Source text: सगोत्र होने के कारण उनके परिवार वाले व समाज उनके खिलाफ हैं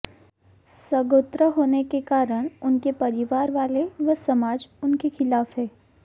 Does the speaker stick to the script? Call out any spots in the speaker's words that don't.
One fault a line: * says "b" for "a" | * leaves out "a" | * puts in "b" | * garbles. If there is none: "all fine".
all fine